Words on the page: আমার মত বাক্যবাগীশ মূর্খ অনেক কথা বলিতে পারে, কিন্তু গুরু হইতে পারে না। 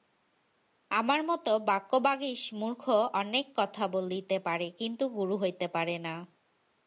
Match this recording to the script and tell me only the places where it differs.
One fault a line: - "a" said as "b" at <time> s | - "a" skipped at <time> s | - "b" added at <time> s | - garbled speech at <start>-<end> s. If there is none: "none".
none